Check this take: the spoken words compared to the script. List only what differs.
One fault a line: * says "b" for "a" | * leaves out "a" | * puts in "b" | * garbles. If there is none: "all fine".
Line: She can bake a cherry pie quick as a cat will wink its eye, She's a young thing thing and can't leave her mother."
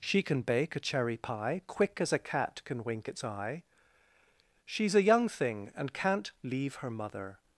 * says "can" for "will"
* leaves out "thing"